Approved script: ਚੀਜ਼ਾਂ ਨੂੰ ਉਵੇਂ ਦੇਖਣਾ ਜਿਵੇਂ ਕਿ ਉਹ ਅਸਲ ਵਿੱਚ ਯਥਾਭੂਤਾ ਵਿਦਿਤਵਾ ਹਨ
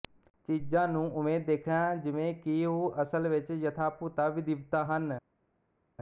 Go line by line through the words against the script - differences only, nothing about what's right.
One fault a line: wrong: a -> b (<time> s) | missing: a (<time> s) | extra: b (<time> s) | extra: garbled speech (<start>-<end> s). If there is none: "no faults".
no faults